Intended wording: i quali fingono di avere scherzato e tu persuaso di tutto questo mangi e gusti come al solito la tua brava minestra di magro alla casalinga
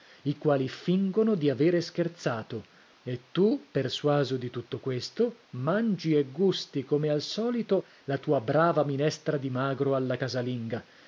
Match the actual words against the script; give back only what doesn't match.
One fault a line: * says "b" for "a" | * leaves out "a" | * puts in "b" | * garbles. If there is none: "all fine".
all fine